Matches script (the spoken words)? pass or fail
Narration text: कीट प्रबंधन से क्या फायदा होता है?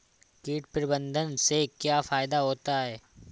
pass